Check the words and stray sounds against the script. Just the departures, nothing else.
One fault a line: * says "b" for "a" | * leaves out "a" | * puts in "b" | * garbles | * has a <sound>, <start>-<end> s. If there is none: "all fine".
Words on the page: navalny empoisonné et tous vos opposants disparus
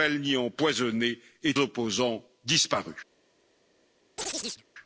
* leaves out "tous vos"
* has a chirp, 4.2-4.6 s